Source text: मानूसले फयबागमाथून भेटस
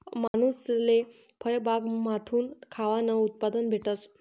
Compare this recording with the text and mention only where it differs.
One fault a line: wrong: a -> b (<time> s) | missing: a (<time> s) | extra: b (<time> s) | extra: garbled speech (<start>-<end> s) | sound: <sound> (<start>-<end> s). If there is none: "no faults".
sound: dropout (0.3-0.3 s)
extra: खावानं उत्पादन (2.7 s)